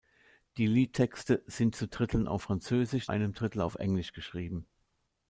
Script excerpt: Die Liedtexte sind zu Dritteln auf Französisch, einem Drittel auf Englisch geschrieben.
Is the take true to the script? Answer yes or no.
yes